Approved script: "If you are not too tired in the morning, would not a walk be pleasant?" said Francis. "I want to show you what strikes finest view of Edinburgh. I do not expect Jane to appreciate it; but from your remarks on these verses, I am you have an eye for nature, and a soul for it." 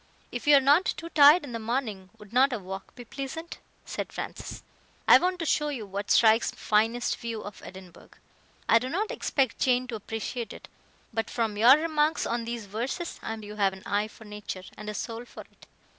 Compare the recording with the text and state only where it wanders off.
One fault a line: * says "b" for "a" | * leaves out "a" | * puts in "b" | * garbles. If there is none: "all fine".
all fine